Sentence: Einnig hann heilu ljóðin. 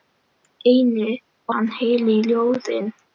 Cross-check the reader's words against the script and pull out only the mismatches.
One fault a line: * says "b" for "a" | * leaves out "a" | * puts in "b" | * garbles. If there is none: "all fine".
all fine